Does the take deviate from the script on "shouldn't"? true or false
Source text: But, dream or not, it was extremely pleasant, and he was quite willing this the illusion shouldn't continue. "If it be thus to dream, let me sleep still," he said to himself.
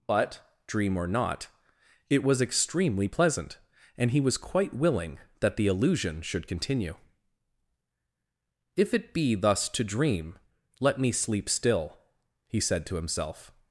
true